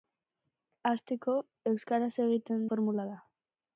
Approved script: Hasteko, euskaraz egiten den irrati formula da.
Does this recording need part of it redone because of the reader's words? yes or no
yes